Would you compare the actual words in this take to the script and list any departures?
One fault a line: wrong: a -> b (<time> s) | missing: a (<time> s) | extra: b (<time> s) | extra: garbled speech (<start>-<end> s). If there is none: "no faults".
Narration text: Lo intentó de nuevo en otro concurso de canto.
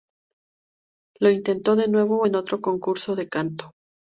no faults